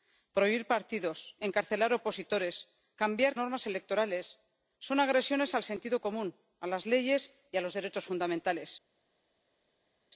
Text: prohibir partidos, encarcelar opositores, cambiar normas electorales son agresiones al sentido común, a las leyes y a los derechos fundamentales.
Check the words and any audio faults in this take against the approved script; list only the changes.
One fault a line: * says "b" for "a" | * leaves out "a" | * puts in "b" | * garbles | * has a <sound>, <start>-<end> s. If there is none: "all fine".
all fine